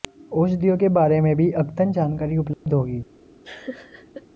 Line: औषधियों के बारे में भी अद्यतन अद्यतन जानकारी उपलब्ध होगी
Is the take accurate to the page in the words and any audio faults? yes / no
no